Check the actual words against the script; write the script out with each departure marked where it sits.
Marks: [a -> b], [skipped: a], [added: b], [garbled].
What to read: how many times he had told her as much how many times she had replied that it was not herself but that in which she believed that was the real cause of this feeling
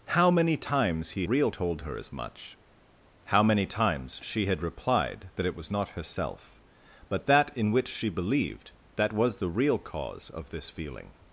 how many times he [had -> real] told her as much how many times she had replied that it was not herself but that in which she believed that was the real cause of this feeling